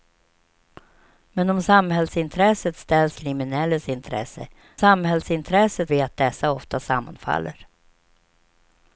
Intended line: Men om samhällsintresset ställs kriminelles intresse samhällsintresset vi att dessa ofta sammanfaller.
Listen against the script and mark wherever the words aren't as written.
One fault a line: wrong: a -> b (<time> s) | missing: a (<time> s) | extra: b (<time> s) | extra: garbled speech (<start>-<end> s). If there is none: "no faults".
no faults